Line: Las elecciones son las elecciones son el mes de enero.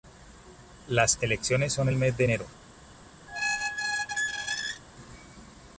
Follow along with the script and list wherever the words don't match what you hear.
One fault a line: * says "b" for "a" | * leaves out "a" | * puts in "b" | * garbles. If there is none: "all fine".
* leaves out "las elecciones son"